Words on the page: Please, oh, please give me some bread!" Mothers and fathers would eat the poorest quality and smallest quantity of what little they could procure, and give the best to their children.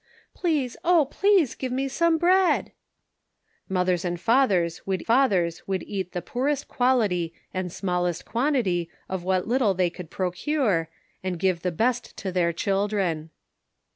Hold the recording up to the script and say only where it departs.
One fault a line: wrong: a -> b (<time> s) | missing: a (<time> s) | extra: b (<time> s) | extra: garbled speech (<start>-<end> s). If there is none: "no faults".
extra: fathers would (5.0 s)